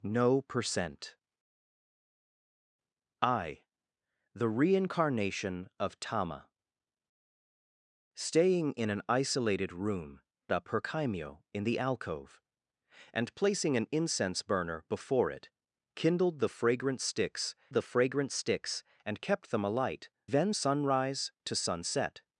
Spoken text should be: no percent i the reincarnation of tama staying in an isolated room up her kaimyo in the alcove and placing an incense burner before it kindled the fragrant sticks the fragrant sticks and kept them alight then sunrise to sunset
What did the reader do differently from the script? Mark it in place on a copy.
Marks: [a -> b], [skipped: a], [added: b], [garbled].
no percent i the reincarnation of tama staying in an isolated room up her kaimyo in the alcove and placing an incense burner before it kindled the fragrant sticks the fragrant sticks and kept them alight then sunrise to sunset